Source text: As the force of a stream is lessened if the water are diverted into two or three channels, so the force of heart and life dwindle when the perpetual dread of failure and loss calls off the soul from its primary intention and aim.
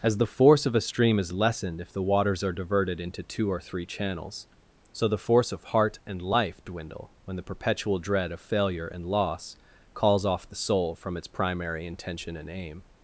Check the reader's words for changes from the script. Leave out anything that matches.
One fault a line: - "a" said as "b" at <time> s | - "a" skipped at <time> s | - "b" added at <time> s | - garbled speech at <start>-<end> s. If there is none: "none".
- "water" said as "waters" at 2.0 s